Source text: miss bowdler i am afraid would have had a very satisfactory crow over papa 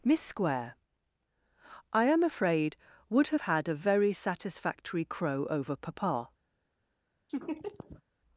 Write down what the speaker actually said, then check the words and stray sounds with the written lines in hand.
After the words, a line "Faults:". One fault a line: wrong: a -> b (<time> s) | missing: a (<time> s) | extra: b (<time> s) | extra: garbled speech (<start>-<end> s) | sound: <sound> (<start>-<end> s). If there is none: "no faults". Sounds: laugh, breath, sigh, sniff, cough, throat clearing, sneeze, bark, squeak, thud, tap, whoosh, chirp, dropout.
miss square i am afraid would have had a very satisfactory crow over papa
Faults:
wrong: bowdler -> square (0.2 s)
sound: laugh (7.3-8.0 s)